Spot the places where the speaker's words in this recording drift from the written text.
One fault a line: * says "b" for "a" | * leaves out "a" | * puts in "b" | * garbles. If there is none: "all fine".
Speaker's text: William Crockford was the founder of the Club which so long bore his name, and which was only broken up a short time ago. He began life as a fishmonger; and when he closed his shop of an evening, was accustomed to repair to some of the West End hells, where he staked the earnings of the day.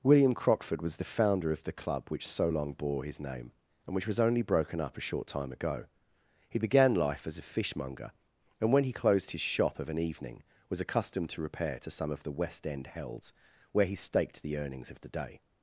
all fine